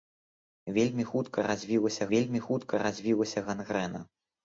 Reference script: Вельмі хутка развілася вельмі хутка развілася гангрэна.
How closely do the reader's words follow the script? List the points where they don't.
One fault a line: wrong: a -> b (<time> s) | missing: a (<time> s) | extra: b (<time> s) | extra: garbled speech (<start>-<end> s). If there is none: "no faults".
no faults